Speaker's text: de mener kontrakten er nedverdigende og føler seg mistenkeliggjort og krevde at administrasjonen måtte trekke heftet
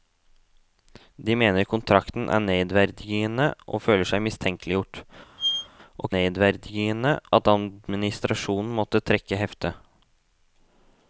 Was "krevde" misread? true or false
true